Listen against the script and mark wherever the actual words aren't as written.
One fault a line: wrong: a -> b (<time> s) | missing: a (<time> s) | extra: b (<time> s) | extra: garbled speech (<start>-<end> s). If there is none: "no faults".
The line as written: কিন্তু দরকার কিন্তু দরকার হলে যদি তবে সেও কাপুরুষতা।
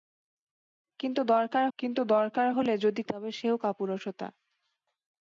no faults